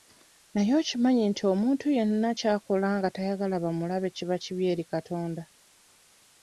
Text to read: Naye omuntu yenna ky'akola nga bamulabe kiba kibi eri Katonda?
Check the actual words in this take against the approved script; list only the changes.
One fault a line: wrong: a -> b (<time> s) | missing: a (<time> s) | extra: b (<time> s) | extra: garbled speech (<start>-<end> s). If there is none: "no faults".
extra: okimanyi nti (0.8 s)
extra: tayagala (3.1 s)